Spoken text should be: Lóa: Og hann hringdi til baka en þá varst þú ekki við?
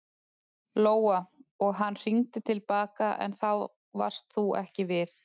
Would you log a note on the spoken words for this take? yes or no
no